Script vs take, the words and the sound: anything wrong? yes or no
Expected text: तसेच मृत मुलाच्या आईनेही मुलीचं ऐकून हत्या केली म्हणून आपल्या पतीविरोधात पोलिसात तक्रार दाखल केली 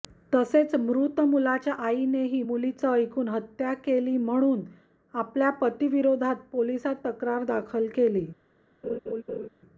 yes